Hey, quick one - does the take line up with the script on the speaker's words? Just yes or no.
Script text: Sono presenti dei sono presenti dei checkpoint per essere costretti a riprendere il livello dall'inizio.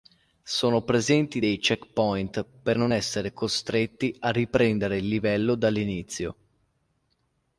no